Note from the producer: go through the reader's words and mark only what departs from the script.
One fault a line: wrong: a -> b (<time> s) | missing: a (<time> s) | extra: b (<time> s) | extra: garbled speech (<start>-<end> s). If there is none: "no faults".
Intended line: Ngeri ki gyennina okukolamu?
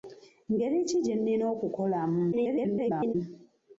extra: garbled speech (2.3-3.1 s)